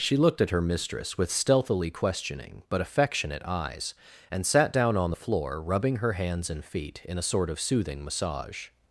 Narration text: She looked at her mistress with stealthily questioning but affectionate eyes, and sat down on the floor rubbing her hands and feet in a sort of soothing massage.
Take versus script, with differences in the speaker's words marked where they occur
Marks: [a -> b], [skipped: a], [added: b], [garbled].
She looked at her mistress with stealthily questioning but affectionate eyes, and sat down on the floor rubbing her hands and feet in a sort of soothing massage.